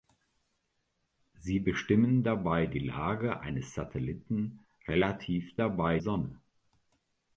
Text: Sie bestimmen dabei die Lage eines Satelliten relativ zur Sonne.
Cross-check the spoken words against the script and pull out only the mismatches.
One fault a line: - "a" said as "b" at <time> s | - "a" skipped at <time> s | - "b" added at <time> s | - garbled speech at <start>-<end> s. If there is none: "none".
- "zur" said as "dabei" at 5.6 s